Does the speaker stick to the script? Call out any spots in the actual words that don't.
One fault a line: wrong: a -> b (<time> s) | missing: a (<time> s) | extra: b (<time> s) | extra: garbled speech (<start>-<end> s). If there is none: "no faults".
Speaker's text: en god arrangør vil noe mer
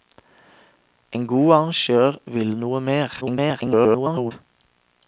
extra: garbled speech (3.2-4.3 s)